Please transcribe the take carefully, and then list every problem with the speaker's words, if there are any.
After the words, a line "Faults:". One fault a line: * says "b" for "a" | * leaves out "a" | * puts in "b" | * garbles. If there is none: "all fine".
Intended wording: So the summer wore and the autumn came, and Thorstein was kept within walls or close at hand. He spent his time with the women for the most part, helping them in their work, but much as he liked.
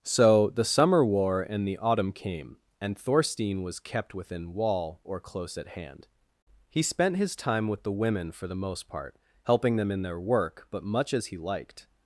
So the summer wore and the autumn came, and Thorstein was kept within wall or close at hand. He spent his time with the women for the most part, helping them in their work, but much as he liked.
Faults:
* says "wall" for "walls"